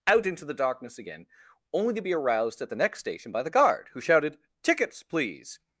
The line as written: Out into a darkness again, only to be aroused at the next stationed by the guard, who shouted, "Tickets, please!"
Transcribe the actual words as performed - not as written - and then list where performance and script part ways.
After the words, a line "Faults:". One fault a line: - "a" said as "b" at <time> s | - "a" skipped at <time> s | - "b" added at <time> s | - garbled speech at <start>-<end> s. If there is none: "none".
Out into the darkness again, only to be aroused at the next station by the guard, who shouted, "Tickets, please!"
Faults:
- "a" said as "the" at 0.4 s
- "stationed" said as "station" at 3.0 s